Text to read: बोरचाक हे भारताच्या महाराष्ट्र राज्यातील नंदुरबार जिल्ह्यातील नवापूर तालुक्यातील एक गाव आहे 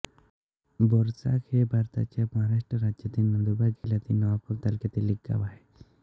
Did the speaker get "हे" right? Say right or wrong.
right